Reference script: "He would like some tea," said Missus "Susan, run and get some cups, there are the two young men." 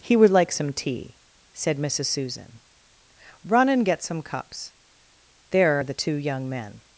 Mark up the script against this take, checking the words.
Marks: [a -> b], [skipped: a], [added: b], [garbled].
"He would like some tea," said Missus "Susan, run and get some cups, there are the two young men."